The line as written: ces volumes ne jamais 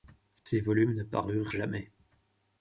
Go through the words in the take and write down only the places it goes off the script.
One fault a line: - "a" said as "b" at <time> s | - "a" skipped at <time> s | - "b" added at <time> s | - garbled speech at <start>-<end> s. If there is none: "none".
- "parurent" added at 1.0 s